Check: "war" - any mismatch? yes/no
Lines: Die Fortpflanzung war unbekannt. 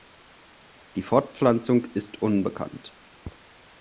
yes